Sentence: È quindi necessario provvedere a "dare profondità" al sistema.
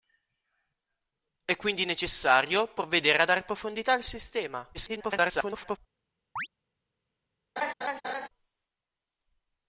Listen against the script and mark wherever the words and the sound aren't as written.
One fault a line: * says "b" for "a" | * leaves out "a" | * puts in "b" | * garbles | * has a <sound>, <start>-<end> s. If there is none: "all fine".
* garbles
* has a chirp, 6.4-6.5 s
* has a laugh, 7.6-8.3 s